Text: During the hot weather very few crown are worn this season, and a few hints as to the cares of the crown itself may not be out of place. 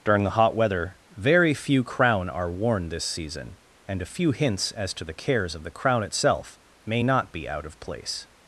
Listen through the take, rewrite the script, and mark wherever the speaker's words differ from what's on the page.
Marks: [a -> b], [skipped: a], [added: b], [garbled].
During the hot weather very few crown are worn this season, and a few hints as to the cares of the crown itself may not be out of place.